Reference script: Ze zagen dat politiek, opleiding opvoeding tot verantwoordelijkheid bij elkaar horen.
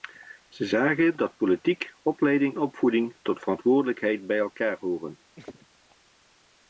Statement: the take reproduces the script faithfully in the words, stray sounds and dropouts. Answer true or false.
false